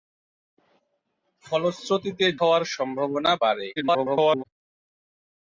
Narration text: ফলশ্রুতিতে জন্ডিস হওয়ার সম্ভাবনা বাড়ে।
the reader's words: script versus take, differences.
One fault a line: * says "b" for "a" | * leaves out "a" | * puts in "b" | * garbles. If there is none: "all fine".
* leaves out "জন্ডিস"
* garbles